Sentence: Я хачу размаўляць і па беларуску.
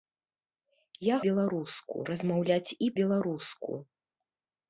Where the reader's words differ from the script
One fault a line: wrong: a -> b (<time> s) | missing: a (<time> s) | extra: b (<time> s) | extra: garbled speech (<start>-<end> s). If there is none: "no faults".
wrong: хачу -> беларуску (1.2 s)
missing: па (2.9 s)